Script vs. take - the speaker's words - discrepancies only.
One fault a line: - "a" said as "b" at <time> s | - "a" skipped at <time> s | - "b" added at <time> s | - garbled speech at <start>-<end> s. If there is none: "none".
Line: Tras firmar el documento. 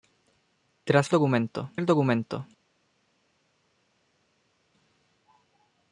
- "firmar" said as "documento" at 1.1 s